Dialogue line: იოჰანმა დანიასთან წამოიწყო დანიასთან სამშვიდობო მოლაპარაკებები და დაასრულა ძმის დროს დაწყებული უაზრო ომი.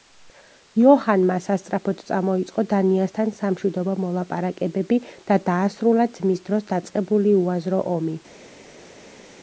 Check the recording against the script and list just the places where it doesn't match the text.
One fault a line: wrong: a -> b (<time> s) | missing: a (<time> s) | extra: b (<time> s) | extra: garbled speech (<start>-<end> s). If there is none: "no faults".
wrong: დანიასთან -> სასწრაფოდ (1.5 s)